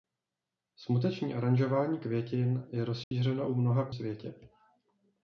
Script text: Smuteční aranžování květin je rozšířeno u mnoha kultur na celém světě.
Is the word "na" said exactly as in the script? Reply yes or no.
no